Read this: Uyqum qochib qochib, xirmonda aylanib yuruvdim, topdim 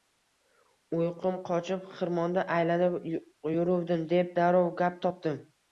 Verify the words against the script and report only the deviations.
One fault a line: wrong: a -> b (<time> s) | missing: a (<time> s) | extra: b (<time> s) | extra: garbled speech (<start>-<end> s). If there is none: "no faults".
missing: qochib (1.9 s)
extra: deb darrov gap (4.2 s)